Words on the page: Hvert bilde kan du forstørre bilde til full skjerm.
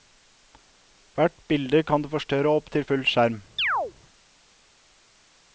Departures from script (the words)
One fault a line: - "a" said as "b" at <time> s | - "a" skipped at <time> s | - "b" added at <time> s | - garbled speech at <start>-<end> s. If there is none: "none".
- "bilde" said as "opp" at 2.6 s